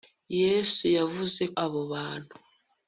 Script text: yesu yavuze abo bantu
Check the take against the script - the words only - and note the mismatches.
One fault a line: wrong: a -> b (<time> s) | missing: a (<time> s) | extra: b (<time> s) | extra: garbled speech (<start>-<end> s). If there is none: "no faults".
no faults